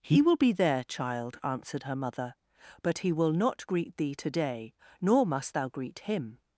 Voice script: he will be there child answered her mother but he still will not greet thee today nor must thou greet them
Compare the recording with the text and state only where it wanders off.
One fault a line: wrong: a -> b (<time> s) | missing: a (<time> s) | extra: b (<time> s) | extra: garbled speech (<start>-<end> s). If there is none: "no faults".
missing: still (3.1 s)
wrong: them -> him (6.0 s)